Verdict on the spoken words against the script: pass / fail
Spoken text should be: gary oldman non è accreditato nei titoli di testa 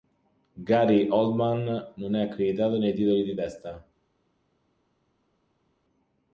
pass